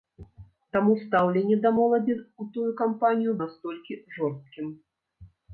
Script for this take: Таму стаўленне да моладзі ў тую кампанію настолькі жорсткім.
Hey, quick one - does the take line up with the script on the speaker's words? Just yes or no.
yes